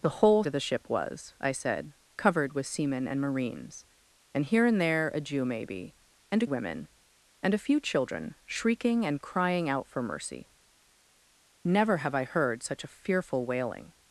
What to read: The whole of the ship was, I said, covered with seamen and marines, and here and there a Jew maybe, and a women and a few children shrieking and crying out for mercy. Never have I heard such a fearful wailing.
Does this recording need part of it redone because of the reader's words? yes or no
no